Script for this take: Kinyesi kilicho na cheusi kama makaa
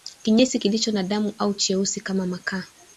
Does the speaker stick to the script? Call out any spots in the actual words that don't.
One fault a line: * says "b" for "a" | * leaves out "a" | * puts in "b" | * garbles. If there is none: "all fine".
* puts in "damu au"